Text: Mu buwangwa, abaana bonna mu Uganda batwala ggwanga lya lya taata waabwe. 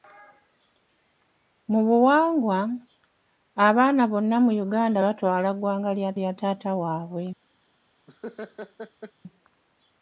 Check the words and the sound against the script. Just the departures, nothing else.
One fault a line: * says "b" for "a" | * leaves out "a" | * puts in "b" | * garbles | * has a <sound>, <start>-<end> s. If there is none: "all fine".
* has a laugh, 8.1-9.1 s